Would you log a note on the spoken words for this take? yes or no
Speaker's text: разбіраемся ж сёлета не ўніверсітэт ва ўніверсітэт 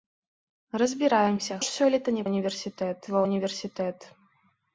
no